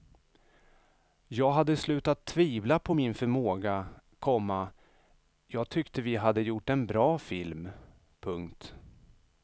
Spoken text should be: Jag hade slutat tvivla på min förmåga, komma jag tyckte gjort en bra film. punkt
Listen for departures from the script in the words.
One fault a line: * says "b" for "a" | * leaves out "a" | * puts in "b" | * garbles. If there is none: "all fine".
* puts in "vi hade"